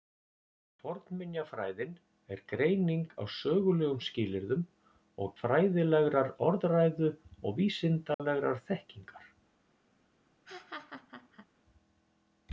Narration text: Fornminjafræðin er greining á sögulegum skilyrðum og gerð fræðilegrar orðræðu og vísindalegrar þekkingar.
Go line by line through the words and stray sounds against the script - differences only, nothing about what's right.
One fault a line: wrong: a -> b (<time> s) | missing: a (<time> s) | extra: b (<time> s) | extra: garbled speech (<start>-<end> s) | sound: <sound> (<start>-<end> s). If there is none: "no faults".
missing: gerð (5.4 s)
sound: dropout (8.1-8.2 s)
sound: laugh (10.5-11.5 s)